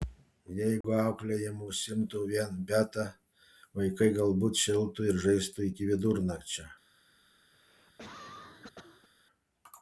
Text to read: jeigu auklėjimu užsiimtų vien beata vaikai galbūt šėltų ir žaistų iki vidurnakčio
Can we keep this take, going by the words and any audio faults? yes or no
no